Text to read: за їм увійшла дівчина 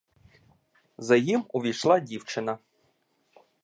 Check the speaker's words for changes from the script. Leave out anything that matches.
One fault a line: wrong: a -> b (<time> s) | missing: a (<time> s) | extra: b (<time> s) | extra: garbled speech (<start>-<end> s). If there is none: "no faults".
no faults